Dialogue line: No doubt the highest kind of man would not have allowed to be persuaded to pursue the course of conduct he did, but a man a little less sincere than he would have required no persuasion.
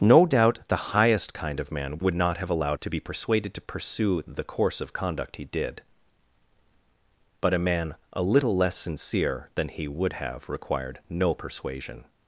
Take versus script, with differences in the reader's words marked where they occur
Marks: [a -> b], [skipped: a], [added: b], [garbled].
No doubt the highest kind of man would not have allowed to be persuaded to pursue the course of conduct he did, but a man a little less sincere than he would have required no persuasion.